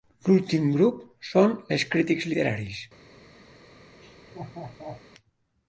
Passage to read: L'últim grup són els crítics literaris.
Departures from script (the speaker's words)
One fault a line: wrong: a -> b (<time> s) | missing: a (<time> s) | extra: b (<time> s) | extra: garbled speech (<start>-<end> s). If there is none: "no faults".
no faults